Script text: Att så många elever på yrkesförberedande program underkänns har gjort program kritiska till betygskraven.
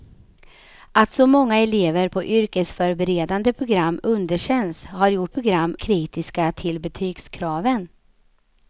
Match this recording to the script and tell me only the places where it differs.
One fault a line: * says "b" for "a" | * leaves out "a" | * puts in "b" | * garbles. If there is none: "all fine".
all fine